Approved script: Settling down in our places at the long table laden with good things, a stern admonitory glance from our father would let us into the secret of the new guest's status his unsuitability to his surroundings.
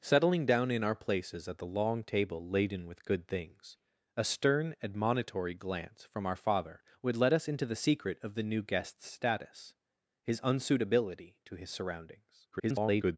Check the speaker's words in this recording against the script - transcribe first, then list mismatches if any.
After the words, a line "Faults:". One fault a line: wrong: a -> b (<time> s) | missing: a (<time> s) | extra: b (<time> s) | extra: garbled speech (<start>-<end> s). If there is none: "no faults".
Settling down in our places at the long table laden with good things, a stern admonitory glance from our father would let us into the secret of the new guest's status his unsuitability to his surroundings. [garbled]
Faults:
extra: garbled speech (12.5-13.2 s)